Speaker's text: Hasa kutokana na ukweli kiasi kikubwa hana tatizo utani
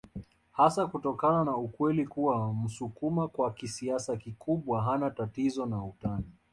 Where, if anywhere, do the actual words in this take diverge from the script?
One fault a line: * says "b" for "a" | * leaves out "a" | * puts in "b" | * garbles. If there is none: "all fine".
* puts in "kuwa msukuma kwa"
* puts in "na"